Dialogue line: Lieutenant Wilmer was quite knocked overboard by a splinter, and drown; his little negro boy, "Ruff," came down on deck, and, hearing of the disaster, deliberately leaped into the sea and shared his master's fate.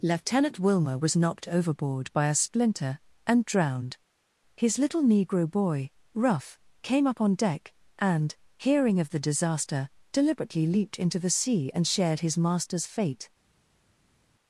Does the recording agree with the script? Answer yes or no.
no